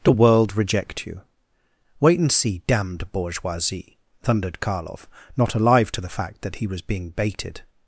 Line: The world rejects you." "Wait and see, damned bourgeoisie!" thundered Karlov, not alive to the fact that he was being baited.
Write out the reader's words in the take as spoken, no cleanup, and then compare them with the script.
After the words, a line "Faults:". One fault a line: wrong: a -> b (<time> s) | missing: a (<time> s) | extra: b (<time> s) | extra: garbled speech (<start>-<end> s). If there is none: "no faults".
The world reject you." "Wait and see, damned bourgeoisie!" thundered Karlov, not alive to the fact that he was being baited.
Faults:
wrong: rejects -> reject (0.6 s)